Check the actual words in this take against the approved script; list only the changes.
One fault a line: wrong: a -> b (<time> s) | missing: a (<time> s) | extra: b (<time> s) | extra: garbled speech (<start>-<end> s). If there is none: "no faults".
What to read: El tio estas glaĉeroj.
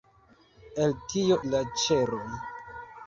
missing: estas (1.4 s)